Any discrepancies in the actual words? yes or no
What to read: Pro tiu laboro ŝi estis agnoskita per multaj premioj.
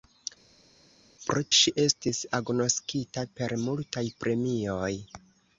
yes